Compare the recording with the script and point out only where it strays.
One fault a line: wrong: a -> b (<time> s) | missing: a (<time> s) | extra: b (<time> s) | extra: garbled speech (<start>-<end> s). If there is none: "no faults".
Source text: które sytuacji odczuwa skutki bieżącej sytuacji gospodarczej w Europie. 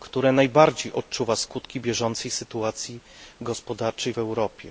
wrong: sytuacji -> najbardziej (0.3 s)